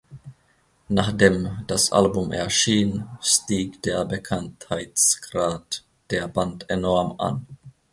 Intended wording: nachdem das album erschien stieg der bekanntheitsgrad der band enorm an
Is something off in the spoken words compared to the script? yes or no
no